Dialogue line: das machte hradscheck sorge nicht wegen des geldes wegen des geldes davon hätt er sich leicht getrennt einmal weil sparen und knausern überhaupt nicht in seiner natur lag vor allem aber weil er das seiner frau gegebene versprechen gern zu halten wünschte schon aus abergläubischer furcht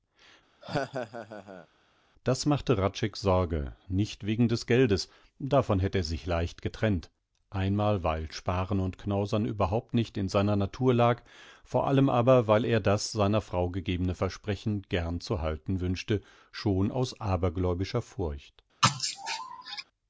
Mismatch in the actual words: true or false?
true